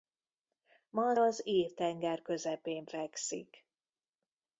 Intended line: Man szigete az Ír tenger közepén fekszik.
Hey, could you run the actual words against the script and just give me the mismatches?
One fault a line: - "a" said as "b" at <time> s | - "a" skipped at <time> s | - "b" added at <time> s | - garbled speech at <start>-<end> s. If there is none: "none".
- "szigete" skipped at 1.1 s